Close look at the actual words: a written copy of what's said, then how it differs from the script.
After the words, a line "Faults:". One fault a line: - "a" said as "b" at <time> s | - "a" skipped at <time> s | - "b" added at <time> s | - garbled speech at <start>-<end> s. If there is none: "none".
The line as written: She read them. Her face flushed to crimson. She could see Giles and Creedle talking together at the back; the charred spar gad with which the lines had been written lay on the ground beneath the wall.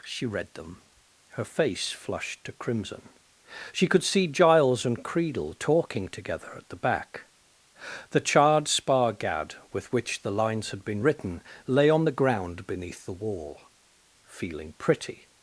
She read them. Her face flushed to crimson. She could see Giles and Creedle talking together at the back; the charred spar gad with which the lines had been written lay on the ground beneath the wall. Feeling pretty
Faults:
- "Feeling pretty" added at 14.2 s